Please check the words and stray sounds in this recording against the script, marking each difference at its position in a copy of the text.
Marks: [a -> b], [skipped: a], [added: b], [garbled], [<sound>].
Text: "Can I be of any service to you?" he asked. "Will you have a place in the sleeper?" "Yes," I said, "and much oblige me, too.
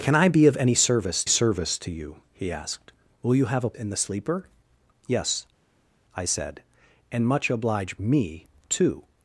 "Can I be of any service [added: service] to you?" he asked. "Will you have a [skipped: place] in the sleeper?" "Yes," I said, "and much oblige me, too.